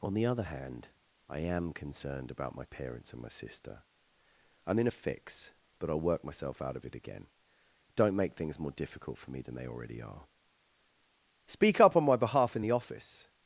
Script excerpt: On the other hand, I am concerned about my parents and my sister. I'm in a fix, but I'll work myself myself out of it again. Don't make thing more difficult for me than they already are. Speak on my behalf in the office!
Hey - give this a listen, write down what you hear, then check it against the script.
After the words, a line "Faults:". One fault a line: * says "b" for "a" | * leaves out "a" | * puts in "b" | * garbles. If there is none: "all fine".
On the other hand, I am concerned about my parents and my sister. I'm in a fix, but I'll work myself out of it again. Don't make things more difficult for me than they already are. Speak up on my behalf in the office!
Faults:
* leaves out "myself"
* says "things" for "thing"
* puts in "up"